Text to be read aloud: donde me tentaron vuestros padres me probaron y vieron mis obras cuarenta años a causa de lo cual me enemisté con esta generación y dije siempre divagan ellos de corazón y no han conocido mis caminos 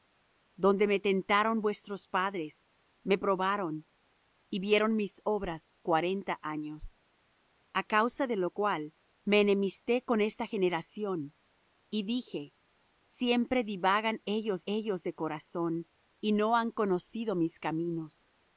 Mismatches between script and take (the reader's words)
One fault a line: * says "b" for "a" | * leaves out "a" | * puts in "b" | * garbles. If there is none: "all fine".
* puts in "ellos"